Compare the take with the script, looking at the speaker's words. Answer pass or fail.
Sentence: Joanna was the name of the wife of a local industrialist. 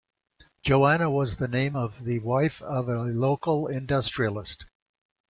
pass